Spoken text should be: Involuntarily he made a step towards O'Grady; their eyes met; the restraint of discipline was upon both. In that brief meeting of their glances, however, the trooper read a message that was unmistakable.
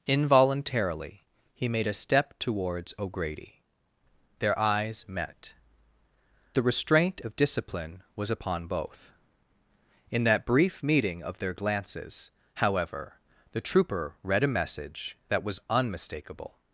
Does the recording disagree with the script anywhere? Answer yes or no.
no